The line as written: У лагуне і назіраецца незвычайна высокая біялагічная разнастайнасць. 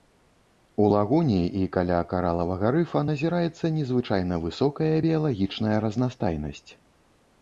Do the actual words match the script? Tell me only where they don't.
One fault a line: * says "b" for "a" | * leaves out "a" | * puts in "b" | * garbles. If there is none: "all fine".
* puts in "каля каралавага рыфа"